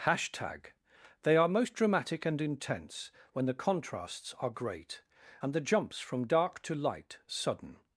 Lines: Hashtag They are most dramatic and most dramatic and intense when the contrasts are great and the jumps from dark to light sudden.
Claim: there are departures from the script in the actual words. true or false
true